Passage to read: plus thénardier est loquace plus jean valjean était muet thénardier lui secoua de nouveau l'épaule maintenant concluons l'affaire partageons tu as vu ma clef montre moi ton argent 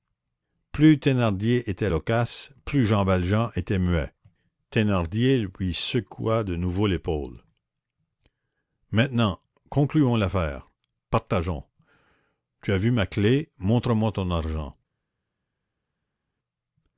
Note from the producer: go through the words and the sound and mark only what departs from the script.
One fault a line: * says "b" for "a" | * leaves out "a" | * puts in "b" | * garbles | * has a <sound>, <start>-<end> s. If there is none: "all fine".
* says "était" for "est"